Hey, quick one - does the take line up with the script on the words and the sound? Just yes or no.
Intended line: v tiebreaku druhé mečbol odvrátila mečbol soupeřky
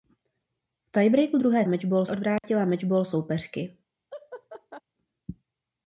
no